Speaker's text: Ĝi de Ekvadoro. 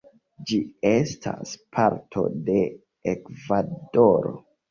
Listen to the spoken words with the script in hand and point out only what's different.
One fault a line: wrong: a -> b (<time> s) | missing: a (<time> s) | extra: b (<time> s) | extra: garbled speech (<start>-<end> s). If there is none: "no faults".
extra: estas parto (0.9 s)